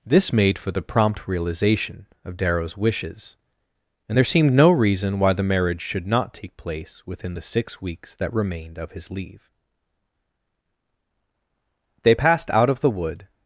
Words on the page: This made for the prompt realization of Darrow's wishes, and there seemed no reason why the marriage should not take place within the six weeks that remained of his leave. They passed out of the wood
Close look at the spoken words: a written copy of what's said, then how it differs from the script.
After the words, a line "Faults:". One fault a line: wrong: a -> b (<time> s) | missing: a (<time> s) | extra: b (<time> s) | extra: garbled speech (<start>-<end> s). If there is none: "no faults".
This made for the prompt realization of Darrow's wishes, and there seemed no reason why the marriage should not take place within the six weeks that remained of his leave. They passed out of the wood
Faults:
no faults